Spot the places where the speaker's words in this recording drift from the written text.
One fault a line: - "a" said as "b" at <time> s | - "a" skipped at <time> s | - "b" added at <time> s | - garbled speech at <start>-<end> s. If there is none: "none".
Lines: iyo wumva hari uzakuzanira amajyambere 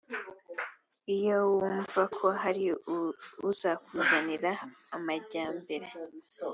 - "ko" added at 2.2 s